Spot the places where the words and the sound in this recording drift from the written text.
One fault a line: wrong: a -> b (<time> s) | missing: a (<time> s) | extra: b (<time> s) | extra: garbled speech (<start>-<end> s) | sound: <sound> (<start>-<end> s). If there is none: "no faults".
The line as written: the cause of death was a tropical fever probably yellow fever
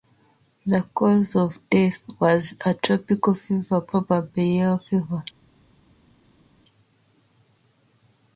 no faults